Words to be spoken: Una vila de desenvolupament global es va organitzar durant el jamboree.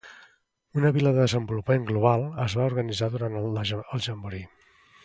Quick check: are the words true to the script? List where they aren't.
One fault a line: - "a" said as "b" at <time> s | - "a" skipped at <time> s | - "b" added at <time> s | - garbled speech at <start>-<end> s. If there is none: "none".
none